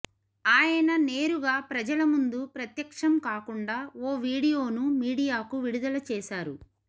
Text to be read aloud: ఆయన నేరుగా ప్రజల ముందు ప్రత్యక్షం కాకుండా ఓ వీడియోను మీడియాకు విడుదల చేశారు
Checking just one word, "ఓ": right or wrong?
right